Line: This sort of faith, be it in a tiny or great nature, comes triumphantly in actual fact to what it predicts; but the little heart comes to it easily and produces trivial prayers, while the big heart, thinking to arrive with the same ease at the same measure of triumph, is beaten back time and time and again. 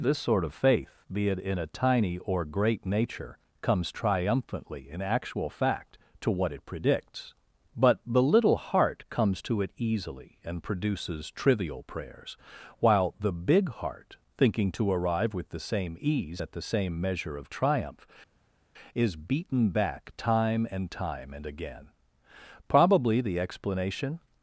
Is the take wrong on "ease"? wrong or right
right